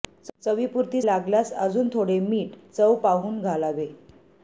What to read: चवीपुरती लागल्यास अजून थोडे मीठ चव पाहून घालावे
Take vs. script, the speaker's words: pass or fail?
pass